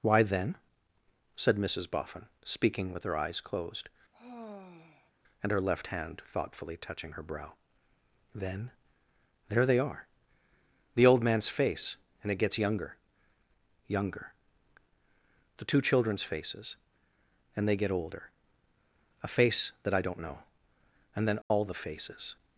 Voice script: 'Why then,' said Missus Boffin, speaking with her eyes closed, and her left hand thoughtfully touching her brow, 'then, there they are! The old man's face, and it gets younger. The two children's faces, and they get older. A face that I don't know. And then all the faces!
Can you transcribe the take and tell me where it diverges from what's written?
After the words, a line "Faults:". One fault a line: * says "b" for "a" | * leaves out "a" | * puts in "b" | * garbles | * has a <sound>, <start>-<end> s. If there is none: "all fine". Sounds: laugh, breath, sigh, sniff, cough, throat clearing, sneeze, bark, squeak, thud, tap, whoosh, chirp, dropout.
'Why then,' said Missus Boffin, speaking with her eyes closed, and her left hand thoughtfully touching her brow, 'then, there they are! The old man's face, and it gets younger younger. The two children's faces, and they get older. A face that I don't know. And then all the faces!
Faults:
* has a sigh, 4.1-5.1 s
* puts in "younger"
* has a dropout, 21.4-21.5 s